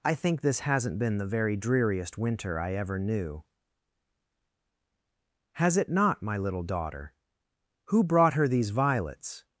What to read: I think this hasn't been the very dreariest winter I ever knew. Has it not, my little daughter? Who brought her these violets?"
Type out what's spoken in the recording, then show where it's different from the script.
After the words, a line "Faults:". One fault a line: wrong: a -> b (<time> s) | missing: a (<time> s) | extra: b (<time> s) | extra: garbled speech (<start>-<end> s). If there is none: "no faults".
I think this hasn't been the very dreariest winter I ever knew. Has it not, my little daughter? Who brought her these violets?"
Faults:
no faults